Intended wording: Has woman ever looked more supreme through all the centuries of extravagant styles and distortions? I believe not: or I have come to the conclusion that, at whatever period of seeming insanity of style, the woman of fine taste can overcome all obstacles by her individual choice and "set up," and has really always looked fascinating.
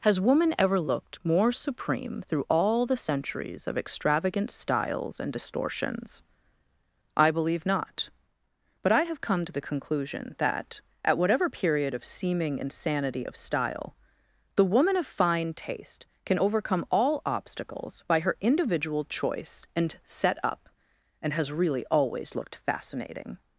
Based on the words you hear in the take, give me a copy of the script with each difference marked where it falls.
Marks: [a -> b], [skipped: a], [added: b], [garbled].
Has woman ever looked more supreme through all the centuries of extravagant styles and distortions? I believe not: [or -> but] I have come to the conclusion that, at whatever period of seeming insanity of style, the woman of fine taste can overcome all obstacles by her individual choice and "set up," and has really always looked fascinating.